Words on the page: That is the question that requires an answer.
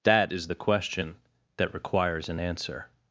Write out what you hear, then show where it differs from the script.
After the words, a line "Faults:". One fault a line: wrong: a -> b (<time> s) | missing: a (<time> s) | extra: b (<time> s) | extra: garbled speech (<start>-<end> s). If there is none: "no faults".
That is the question that requires an answer.
Faults:
no faults